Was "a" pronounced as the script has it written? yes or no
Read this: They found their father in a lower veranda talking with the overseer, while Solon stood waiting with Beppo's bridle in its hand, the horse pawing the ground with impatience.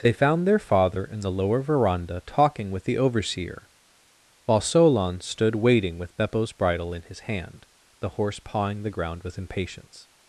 no